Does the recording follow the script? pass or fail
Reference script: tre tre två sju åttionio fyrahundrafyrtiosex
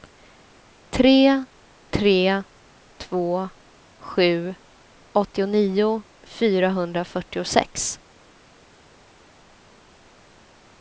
pass